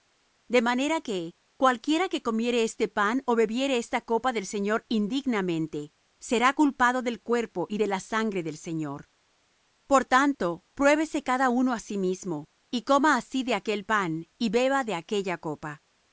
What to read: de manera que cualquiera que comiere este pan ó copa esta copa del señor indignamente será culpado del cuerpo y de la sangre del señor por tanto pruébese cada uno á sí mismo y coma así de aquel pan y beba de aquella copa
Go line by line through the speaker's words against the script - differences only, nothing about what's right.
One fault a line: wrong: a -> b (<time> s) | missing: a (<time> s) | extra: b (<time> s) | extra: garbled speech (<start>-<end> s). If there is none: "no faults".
wrong: copa -> bebiere (3.4 s)